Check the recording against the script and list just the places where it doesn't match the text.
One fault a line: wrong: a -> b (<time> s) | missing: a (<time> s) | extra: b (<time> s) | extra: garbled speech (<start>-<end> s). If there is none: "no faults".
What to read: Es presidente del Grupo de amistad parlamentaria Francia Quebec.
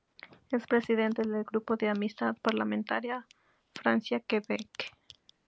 no faults